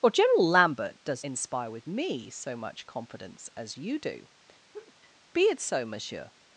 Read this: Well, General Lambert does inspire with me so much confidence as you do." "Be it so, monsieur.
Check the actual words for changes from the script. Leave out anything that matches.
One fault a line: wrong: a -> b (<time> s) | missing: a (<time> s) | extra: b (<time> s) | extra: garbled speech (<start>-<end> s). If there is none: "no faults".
no faults